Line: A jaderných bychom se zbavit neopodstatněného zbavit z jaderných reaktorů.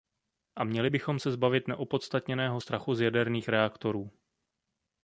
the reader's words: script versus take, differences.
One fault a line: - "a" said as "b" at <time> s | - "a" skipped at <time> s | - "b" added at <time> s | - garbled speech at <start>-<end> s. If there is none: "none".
- "jaderných" said as "měli" at 0.6 s
- "zbavit" said as "strachu" at 2.6 s